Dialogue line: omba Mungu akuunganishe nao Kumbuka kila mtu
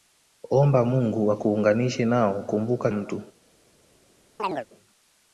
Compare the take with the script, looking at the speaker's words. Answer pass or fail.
fail